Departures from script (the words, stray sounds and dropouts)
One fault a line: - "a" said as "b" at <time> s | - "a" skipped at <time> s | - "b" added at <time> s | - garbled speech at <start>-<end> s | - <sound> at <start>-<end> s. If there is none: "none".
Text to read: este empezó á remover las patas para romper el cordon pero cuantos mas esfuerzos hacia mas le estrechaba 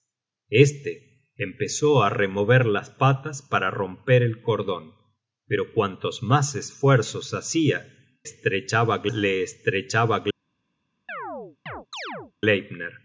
- "mas" said as "estrechaba" at 8.2 s
- chirp at 11.1-12.3 s